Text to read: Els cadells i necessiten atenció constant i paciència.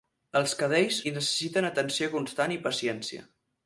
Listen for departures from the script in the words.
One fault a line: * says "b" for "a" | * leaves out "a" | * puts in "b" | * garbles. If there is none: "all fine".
all fine